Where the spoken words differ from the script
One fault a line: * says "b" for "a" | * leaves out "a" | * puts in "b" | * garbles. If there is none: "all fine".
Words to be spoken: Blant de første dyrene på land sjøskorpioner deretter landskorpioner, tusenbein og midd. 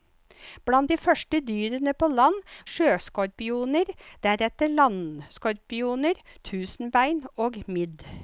all fine